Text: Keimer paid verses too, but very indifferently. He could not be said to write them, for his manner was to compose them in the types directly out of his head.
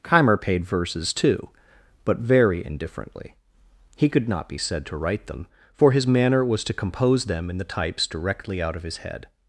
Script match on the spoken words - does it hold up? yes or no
yes